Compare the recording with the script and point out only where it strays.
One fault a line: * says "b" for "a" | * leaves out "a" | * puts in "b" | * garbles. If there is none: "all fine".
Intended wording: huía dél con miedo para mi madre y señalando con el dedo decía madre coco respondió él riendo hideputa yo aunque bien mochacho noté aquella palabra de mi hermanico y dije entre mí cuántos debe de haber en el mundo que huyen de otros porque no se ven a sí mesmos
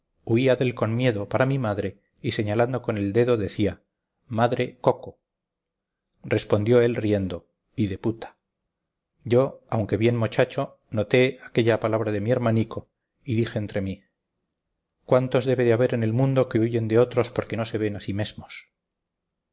all fine